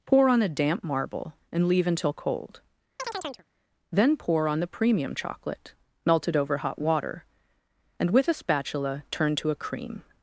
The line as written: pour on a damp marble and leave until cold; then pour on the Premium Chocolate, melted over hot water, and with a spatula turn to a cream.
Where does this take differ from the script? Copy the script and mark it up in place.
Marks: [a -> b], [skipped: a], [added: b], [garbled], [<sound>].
pour on a damp marble and leave until cold; [chirp] then pour on the Premium Chocolate, melted over hot water, and with a spatula turn to a cream.